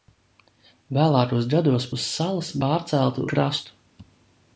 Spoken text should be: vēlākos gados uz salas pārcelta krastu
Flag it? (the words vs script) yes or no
no